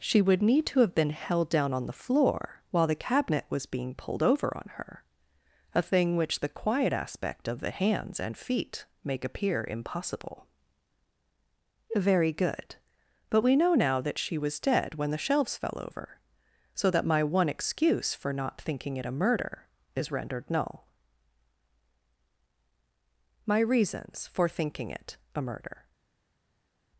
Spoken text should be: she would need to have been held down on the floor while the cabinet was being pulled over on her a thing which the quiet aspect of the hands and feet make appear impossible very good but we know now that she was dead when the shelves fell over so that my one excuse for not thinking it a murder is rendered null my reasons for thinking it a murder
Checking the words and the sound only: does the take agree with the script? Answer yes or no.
yes